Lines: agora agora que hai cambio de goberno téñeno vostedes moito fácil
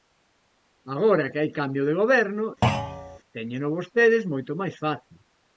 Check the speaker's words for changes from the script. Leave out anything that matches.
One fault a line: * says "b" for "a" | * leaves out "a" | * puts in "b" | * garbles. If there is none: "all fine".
* leaves out "agora"
* puts in "máis"